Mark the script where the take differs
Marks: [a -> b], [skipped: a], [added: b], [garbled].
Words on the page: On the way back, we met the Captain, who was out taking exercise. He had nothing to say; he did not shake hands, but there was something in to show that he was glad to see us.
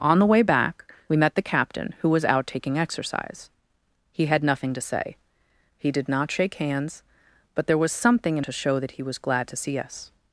On the way back, we met the Captain, who was out taking exercise. He had nothing to say; he did not shake hands, but there was something in to show that he was glad to see us.